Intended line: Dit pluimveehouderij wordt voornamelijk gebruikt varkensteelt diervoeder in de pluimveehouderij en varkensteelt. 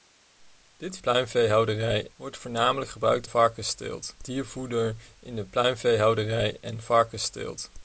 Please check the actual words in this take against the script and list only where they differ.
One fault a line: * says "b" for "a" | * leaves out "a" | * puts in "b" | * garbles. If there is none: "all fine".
all fine